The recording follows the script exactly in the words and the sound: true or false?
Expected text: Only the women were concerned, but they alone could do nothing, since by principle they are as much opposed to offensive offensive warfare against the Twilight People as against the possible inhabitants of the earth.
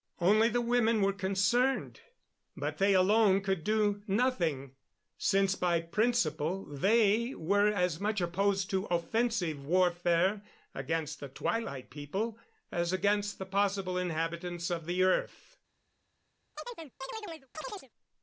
false